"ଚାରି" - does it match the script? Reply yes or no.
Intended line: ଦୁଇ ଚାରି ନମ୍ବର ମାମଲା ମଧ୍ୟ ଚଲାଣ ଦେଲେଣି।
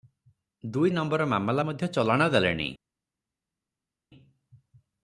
no